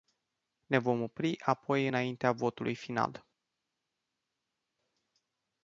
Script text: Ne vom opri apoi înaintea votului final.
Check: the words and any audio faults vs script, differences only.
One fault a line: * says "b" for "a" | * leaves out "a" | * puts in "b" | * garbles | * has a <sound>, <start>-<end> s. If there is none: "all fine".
all fine